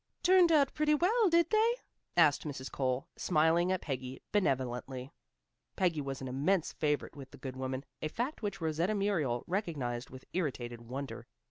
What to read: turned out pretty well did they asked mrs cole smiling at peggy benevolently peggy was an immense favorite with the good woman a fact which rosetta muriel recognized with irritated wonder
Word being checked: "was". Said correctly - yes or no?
yes